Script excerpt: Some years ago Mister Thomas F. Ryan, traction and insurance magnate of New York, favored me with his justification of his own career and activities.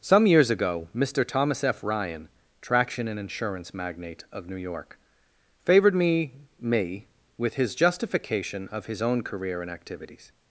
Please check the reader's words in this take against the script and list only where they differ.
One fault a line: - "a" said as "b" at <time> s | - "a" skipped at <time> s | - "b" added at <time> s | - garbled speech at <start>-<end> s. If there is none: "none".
- "me" added at 6.6 s